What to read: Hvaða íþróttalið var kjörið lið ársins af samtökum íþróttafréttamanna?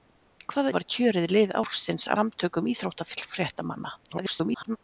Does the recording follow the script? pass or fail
fail